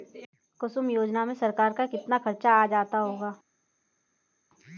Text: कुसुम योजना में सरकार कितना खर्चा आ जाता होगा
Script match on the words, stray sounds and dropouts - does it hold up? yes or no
no